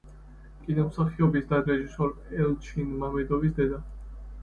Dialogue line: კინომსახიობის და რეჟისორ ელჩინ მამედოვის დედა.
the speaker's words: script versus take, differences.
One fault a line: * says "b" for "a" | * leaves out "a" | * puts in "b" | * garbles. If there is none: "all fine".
all fine